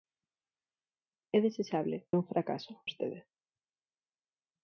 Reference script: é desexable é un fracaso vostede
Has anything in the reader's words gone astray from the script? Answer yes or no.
no